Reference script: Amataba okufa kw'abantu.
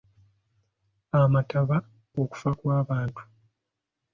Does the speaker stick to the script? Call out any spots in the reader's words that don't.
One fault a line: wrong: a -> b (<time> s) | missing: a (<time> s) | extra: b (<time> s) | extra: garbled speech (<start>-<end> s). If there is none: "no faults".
no faults